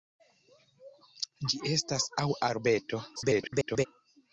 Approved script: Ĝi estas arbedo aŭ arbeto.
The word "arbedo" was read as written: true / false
false